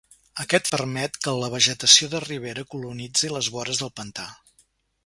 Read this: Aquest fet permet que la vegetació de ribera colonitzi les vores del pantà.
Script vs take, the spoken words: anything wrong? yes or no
yes